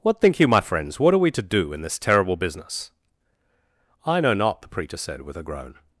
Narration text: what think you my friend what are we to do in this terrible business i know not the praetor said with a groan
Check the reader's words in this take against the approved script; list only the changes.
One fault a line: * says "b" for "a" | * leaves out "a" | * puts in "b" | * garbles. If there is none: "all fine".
* says "friends" for "friend"